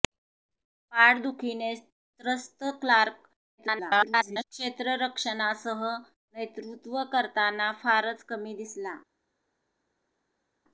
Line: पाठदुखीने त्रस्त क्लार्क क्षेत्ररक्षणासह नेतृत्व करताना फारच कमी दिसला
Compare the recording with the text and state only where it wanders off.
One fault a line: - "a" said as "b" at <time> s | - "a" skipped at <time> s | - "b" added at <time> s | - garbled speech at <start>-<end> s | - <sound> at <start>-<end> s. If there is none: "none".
- garbled speech at 3.6-4.4 s